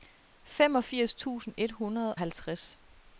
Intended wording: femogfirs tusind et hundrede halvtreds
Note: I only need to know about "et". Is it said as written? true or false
true